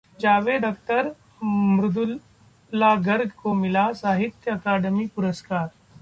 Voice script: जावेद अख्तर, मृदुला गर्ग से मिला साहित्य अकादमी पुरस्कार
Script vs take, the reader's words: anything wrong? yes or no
yes